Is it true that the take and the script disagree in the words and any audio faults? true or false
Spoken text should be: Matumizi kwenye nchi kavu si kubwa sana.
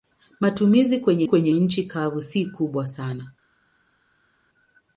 true